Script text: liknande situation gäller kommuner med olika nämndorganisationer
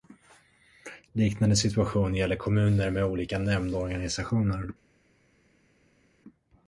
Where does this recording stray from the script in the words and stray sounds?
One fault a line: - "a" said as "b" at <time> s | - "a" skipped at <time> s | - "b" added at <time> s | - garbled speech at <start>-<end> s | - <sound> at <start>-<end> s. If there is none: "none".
none